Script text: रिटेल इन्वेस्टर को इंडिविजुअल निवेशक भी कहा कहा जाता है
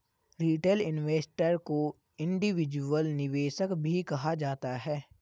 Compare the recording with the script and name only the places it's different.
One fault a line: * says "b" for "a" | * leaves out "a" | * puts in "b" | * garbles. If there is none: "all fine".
* leaves out "कहा"